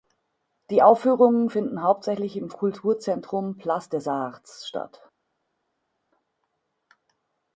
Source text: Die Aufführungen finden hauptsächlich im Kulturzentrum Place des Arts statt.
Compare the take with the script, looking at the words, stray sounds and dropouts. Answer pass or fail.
pass